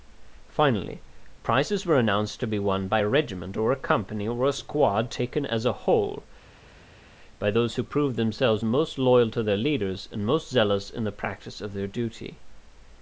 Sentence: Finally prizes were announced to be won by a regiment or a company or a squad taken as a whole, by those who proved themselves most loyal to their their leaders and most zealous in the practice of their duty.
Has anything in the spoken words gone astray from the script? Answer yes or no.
yes